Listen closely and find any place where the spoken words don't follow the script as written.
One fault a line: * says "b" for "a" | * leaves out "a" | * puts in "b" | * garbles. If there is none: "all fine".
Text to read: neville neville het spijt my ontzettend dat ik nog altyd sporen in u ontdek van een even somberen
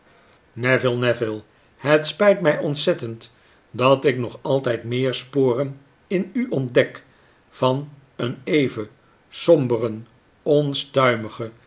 * puts in "meer"